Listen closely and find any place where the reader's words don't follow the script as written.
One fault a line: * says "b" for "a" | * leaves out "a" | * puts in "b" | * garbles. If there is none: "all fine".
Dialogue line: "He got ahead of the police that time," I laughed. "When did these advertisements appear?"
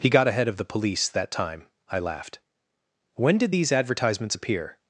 all fine